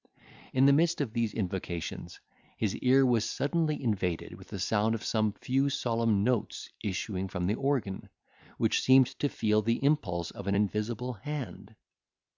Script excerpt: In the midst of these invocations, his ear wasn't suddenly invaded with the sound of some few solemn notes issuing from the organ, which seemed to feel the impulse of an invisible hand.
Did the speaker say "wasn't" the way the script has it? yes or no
no